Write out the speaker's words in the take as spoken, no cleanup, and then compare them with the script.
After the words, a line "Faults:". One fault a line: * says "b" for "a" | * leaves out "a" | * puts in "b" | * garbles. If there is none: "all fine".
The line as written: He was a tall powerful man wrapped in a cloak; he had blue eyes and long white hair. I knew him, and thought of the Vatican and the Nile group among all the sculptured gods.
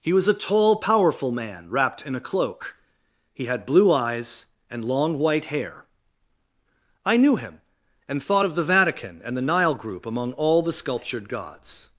He was a tall powerful man wrapped in a cloak; he had blue eyes and long white hair. I knew him, and thought of the Vatican and the Nile group among all the sculptured gods.
Faults:
all fine